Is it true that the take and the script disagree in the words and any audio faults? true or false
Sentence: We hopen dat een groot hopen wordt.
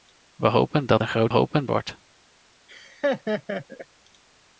true